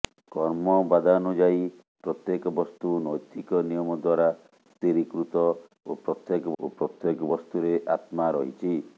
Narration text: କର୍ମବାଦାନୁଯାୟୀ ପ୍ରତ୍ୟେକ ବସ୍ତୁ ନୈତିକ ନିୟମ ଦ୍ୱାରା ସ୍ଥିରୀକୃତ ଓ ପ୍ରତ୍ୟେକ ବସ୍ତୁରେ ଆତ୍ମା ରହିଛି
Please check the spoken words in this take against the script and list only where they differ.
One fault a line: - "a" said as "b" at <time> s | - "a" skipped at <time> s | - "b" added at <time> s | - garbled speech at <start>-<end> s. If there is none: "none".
- "ଓ ପ୍ରତ୍ୟେକ" added at 6.6 s